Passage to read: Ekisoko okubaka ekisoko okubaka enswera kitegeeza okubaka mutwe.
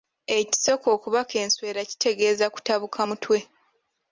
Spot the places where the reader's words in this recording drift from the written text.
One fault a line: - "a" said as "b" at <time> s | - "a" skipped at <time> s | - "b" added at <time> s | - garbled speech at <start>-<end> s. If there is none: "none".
- "ekisoko okubaka" skipped at 1.3 s
- "okubaka" said as "kutabuka" at 2.5 s